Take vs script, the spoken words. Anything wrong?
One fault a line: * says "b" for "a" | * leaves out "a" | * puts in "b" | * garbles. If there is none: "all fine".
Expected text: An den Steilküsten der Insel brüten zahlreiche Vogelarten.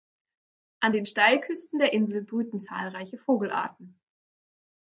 all fine